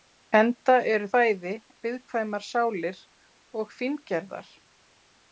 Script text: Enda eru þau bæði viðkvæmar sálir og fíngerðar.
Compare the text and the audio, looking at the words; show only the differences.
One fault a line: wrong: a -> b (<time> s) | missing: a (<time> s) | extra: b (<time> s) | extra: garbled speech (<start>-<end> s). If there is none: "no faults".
missing: þau (1.1 s)